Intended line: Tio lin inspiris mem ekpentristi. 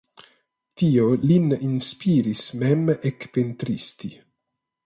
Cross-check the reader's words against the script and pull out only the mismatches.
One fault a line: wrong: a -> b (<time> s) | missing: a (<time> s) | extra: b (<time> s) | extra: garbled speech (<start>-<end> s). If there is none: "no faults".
no faults